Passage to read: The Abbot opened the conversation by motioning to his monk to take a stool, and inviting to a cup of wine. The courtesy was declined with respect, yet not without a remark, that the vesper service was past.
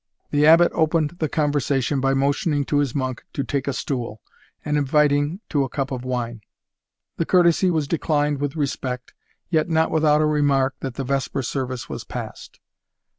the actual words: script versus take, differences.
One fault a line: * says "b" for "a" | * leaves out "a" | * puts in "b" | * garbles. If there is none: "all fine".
all fine